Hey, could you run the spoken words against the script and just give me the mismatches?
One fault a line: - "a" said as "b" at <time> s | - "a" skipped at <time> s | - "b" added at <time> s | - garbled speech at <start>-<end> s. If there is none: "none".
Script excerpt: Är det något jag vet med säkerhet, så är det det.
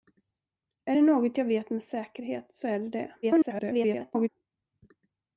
- garbled speech at 3.2-4.3 s